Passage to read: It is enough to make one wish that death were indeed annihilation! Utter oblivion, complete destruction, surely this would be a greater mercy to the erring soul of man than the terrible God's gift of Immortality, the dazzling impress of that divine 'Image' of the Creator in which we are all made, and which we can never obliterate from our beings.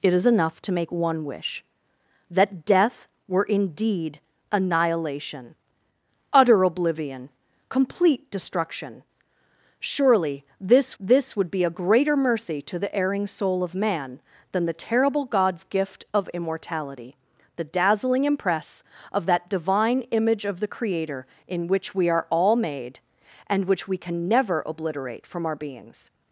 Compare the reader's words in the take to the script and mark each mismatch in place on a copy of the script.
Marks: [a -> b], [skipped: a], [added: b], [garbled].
It is enough to make one wish that death were indeed annihilation! Utter oblivion, complete destruction, surely this [added: this] would be a greater mercy to the erring soul of man than the terrible God's gift of Immortality, the dazzling impress of that divine 'Image' of the Creator in which we are all made, and which we can never obliterate from our beings.